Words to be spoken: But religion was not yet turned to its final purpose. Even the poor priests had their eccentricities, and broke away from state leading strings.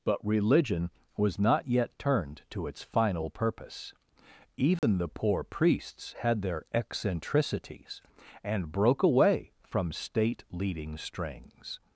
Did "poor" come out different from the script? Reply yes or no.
no